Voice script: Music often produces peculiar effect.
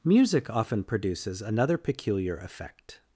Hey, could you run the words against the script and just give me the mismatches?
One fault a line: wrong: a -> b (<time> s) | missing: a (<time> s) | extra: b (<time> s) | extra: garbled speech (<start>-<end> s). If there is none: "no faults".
extra: another (1.4 s)